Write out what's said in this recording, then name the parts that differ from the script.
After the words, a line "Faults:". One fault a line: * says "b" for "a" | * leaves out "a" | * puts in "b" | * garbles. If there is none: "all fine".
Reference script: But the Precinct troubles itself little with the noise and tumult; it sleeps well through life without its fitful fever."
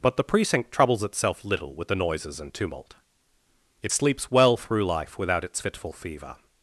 But the Precinct troubles itself little with the noises and tumult; it sleeps well through life without its fitful fever."
Faults:
* says "noises" for "noise"